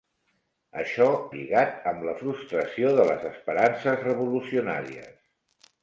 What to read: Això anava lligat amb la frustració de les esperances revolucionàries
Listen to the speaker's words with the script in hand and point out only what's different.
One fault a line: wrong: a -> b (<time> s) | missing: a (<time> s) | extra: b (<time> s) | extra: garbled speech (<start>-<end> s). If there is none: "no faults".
missing: anava (1.1 s)